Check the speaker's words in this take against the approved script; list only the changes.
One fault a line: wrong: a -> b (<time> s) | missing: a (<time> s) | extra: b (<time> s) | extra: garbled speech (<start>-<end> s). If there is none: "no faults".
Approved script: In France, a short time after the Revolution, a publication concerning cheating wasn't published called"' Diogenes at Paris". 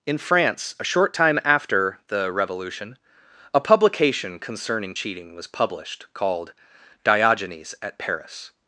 wrong: wasn't -> was (5.3 s)